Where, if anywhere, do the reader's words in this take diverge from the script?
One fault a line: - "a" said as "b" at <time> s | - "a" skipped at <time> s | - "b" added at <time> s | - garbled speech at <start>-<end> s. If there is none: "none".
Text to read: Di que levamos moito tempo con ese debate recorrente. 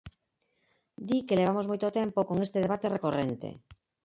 - "ese" said as "este" at 2.5 s